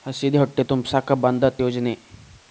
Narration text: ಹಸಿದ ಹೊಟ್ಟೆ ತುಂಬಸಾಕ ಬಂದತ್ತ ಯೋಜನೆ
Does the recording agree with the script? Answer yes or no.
yes